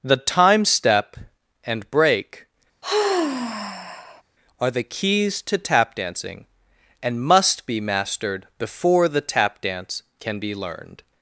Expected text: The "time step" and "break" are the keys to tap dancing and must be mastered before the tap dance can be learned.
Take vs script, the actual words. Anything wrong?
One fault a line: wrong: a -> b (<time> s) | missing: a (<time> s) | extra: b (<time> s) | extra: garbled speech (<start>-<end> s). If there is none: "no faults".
no faults